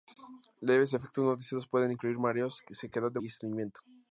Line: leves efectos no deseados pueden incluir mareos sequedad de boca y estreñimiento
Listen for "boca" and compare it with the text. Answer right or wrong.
wrong